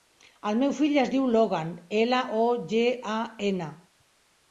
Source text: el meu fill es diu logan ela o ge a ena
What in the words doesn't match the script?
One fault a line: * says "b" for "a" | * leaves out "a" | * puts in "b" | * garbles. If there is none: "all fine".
all fine